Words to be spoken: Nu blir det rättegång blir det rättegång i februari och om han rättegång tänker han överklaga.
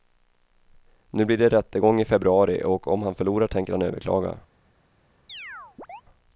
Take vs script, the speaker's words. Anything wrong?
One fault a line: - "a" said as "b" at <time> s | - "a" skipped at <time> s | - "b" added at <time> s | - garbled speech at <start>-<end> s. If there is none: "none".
- "blir det rättegång" skipped at 2.0 s
- "rättegång" said as "förlorar" at 3.1 s